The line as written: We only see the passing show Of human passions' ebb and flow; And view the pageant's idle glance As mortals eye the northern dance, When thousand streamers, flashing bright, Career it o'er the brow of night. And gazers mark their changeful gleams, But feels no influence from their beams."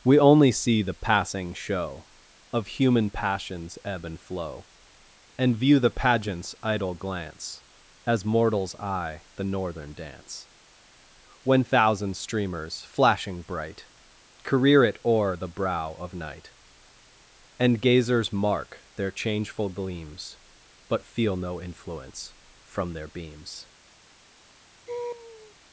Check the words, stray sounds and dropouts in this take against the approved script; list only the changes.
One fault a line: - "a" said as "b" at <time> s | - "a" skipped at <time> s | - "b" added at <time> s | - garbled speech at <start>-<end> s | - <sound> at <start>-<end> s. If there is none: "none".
- "feels" said as "feel" at 21.1 s
- laugh at 24.9-25.6 s